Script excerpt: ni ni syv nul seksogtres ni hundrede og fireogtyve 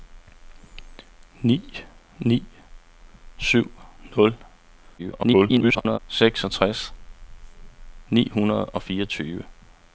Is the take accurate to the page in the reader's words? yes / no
no